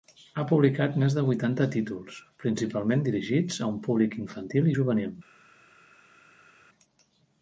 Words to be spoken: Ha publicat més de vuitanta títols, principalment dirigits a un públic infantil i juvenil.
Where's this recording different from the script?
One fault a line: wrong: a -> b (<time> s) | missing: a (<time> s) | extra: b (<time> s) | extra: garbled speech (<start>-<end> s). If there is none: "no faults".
no faults